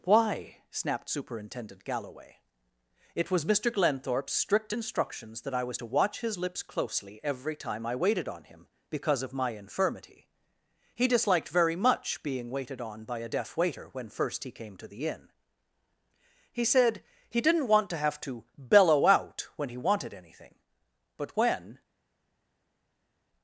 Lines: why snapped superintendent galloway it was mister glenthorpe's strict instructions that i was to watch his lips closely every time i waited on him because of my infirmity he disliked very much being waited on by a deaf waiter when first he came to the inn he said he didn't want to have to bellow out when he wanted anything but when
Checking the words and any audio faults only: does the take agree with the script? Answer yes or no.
yes